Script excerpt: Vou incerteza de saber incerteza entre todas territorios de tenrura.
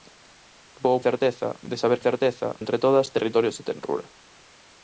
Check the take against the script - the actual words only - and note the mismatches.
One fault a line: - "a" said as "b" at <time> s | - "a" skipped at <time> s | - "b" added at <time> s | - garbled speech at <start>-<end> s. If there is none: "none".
none